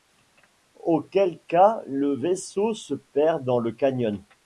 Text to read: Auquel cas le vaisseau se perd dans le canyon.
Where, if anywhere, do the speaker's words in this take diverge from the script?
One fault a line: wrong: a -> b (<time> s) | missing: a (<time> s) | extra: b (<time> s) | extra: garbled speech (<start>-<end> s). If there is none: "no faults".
no faults